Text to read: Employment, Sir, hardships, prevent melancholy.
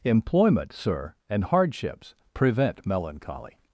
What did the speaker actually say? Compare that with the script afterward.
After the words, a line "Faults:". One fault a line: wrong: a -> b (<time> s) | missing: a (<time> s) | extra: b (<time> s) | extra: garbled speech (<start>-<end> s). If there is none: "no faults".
Employment, Sir, and hardships, prevent melancholy.
Faults:
extra: and (1.3 s)